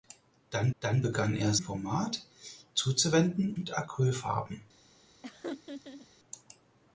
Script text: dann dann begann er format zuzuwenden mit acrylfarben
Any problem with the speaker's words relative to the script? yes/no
no